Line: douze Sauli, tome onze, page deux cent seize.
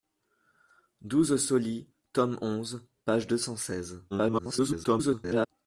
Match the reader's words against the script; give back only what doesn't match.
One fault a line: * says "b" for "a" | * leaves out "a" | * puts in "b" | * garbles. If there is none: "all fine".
* garbles